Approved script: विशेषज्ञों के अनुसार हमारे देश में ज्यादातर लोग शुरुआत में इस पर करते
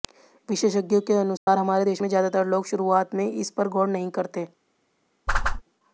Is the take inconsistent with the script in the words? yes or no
yes